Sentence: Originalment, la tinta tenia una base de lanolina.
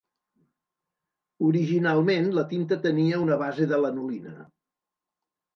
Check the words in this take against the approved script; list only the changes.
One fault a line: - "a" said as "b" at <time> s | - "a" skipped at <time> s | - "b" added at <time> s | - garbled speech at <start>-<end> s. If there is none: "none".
none